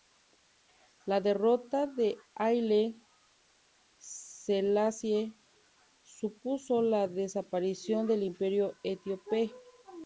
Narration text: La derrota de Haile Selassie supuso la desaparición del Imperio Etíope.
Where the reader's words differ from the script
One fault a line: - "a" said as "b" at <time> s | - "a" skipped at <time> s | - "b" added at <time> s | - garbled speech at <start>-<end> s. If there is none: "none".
none